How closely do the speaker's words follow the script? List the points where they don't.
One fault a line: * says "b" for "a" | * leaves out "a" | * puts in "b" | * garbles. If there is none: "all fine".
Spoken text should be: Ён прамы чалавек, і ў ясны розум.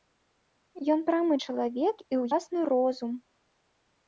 all fine